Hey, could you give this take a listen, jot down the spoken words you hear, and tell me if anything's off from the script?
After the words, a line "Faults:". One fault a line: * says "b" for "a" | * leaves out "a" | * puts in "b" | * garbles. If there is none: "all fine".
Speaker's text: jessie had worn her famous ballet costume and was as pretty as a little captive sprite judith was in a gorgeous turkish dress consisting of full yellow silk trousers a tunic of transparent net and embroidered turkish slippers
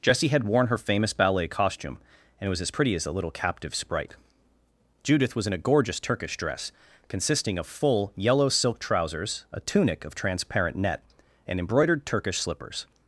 jessie had worn her famous ballet costume and was as pretty as a little captive sprite judith was in a gorgeous turkish dress consisting of full yellow silk trousers a tunic of transparent net and embroidered turkish slippers
Faults:
all fine